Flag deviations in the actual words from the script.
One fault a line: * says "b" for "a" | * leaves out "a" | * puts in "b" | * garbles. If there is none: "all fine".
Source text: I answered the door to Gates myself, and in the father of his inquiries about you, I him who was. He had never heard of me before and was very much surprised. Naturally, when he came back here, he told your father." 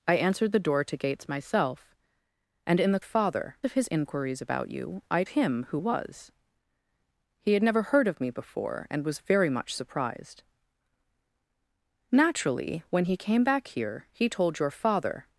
all fine